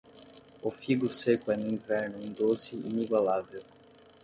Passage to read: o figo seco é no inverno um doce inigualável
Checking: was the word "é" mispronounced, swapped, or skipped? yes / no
no